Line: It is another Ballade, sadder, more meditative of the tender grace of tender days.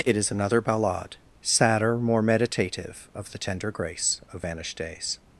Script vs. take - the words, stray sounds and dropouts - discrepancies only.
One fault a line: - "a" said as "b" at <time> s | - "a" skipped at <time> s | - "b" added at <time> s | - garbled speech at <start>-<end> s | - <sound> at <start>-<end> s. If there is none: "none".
- "tender" said as "vanished" at 4.4 s